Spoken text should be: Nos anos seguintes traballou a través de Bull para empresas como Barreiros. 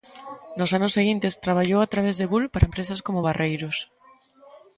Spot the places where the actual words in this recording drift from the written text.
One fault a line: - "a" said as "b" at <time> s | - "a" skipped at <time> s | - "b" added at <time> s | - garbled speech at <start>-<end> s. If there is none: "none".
none